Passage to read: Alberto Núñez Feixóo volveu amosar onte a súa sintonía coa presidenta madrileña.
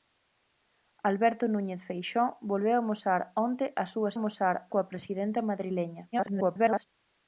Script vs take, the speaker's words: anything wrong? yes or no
yes